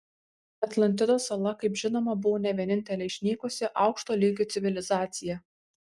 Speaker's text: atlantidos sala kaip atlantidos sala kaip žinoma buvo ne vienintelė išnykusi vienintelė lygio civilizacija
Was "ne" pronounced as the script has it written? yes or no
yes